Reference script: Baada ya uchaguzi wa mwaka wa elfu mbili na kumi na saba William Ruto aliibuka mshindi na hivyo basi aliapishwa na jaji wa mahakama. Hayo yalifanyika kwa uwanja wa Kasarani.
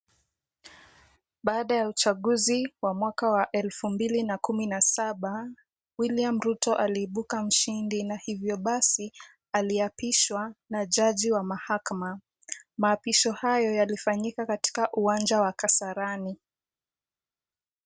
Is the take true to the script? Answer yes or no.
no